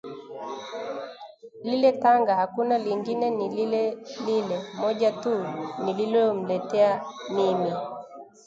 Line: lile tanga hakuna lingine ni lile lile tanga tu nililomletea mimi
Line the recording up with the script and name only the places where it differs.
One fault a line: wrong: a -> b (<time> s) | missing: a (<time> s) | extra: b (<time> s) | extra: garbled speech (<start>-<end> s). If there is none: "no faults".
wrong: tanga -> moja (4.8 s)